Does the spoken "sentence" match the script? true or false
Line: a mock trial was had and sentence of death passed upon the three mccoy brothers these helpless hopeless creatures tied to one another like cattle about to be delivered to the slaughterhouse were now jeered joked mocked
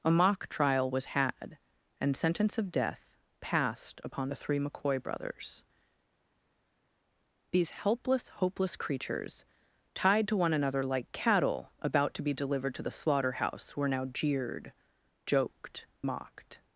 true